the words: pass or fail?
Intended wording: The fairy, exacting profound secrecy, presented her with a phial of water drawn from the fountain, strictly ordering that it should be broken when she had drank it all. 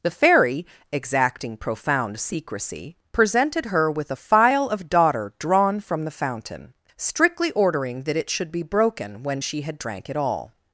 fail